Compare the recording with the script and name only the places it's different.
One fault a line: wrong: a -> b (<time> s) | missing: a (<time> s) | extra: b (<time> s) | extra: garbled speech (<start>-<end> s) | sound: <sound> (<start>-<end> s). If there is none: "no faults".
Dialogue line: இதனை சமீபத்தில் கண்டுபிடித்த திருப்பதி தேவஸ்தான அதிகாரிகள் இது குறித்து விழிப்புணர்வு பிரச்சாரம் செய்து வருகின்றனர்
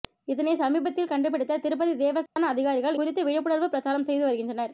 sound: dropout (2.3-2.4 s)
missing: இது (3.0 s)